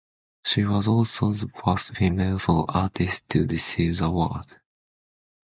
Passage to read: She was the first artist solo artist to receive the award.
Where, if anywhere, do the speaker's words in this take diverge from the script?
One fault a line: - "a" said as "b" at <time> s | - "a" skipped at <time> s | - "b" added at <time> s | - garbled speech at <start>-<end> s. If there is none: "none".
- "also" added at 0.9 s
- "artist" said as "female" at 1.9 s